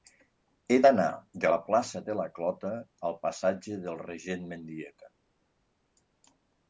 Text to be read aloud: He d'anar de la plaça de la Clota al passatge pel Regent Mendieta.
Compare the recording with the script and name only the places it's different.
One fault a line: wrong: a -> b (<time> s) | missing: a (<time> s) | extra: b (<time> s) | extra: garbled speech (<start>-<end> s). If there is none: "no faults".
wrong: pel -> del (3.8 s)